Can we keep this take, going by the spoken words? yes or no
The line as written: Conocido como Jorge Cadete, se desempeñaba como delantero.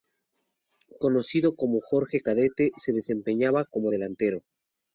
yes